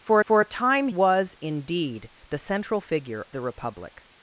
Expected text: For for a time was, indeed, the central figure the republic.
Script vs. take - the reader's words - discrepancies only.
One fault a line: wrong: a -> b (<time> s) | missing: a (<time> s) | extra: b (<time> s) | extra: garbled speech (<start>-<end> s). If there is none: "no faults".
no faults